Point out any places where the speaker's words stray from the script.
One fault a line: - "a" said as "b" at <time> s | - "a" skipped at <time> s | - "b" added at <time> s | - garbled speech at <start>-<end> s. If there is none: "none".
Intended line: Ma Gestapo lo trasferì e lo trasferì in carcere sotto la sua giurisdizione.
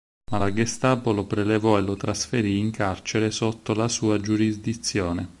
- "la" added at 0.4 s
- "trasferì" said as "prelevò" at 1.3 s